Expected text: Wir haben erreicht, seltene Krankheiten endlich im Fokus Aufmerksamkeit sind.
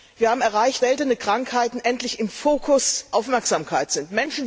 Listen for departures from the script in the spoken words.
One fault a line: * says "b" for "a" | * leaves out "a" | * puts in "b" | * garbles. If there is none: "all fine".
all fine